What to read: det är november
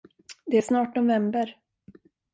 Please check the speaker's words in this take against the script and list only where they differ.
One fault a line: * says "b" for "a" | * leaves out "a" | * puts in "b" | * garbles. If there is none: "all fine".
* puts in "snart"